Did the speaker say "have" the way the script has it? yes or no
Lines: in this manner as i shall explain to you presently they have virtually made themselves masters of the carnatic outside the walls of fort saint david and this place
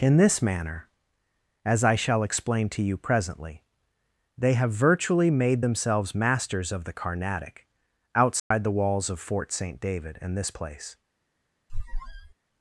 yes